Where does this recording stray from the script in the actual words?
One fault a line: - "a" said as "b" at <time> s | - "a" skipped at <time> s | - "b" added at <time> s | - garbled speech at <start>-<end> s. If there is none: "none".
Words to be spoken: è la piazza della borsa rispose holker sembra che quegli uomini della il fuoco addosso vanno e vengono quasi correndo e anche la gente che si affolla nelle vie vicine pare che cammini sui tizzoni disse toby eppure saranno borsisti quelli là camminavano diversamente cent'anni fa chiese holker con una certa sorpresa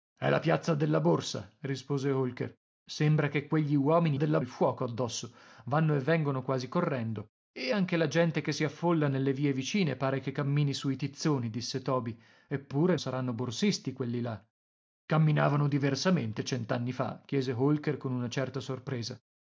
none